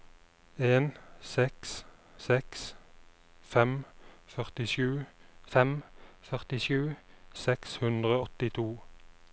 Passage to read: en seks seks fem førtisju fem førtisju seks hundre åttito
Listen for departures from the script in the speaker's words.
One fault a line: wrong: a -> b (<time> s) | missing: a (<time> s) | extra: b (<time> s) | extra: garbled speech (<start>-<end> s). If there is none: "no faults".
no faults